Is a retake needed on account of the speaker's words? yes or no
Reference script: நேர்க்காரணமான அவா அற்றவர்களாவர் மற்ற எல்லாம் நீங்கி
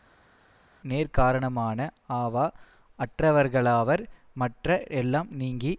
no